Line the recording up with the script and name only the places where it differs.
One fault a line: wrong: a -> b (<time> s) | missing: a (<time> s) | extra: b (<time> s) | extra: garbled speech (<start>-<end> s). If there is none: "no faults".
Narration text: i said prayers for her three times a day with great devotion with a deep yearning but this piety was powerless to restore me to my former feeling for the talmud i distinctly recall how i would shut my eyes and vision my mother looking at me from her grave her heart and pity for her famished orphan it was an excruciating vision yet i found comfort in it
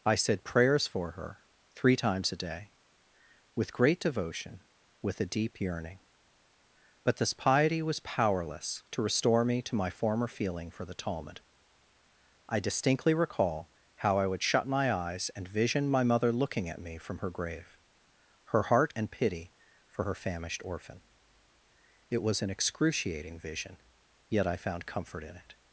no faults